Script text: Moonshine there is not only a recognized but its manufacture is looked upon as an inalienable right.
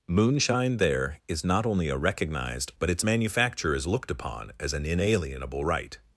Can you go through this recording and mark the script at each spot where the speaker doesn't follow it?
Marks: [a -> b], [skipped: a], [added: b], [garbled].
Moonshine there is not only a recognized but its manufacture is looked upon as an inalienable right.